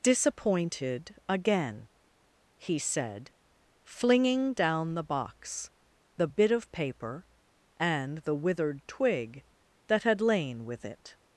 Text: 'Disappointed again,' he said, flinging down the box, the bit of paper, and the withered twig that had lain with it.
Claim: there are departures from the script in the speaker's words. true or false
false